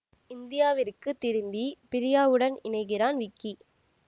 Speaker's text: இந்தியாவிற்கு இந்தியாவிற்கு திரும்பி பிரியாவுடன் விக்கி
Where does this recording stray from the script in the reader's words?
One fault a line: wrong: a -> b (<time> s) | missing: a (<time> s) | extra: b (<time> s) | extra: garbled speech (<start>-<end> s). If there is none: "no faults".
missing: இந்தியாவிற்கு (1.1 s)
extra: இணைகிறான் (2.6 s)